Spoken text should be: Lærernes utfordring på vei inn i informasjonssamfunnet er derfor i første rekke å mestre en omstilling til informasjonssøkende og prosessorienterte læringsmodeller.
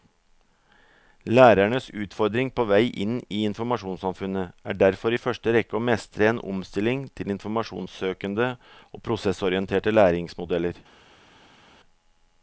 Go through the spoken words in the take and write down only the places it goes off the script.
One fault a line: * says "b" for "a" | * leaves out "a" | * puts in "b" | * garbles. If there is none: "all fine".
all fine